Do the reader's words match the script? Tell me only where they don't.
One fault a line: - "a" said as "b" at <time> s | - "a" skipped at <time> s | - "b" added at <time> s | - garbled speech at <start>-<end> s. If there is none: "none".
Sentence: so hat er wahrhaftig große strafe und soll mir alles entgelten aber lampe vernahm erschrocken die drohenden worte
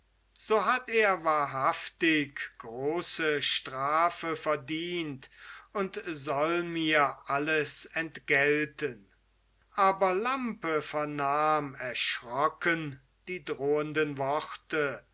- "verdient" added at 4.4 s